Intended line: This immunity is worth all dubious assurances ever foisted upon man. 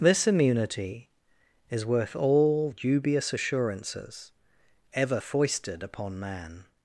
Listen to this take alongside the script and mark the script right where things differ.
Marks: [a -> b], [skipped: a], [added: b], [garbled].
This immunity is worth all dubious assurances ever foisted upon man.